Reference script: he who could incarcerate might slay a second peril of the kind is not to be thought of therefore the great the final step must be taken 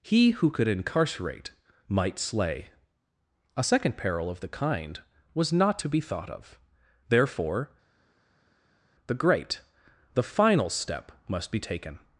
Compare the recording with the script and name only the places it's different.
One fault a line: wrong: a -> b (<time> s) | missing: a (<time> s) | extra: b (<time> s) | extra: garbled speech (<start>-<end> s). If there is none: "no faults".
wrong: is -> was (5.3 s)